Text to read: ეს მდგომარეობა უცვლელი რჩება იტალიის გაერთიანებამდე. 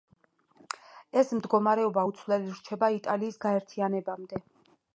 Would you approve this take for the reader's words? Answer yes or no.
yes